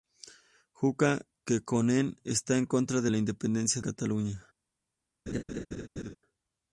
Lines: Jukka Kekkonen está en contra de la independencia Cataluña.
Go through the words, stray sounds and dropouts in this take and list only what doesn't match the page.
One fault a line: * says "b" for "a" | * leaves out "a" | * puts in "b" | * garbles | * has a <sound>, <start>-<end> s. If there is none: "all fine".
* has a laugh, 5.3-6.2 s